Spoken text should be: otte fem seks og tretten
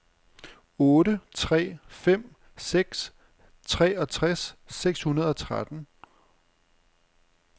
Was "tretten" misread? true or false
false